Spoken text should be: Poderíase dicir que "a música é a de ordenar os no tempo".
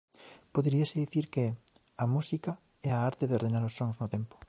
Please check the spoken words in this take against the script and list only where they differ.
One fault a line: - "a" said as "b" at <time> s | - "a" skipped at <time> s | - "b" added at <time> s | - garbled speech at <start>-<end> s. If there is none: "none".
- "arte" added at 3.1 s
- "sons" added at 3.8 s